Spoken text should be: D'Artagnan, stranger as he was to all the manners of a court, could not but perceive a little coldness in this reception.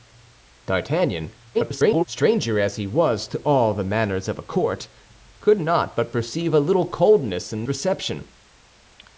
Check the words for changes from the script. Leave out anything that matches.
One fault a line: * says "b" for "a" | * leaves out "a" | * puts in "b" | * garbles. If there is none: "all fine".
* garbles
* leaves out "this"